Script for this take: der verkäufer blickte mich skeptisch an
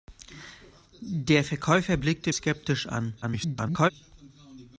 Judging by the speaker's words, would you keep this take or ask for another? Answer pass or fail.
fail